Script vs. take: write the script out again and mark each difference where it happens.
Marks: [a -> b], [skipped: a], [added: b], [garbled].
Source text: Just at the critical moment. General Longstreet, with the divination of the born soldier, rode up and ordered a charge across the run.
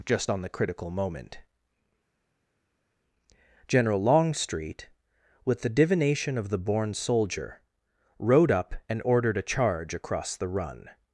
Just [at -> on] the critical moment. General Longstreet, with the divination of the born soldier, rode up and ordered a charge across the run.